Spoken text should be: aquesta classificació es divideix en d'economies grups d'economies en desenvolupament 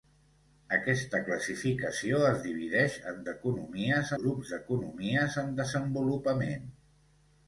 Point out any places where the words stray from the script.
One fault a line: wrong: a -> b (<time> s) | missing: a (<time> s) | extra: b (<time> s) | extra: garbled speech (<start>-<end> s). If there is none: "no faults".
no faults